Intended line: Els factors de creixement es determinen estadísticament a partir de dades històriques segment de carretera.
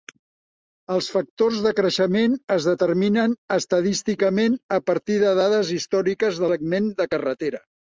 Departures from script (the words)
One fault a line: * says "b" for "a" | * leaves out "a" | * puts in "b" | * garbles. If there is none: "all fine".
all fine